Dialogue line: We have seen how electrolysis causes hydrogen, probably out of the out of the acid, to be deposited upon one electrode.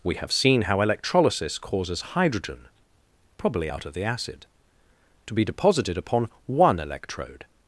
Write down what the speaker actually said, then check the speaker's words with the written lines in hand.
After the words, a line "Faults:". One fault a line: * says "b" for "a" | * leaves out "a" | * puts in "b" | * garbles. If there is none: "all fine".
We have seen how electrolysis causes hydrogen, probably out of the acid, to be deposited upon one electrode.
Faults:
* leaves out "out of the"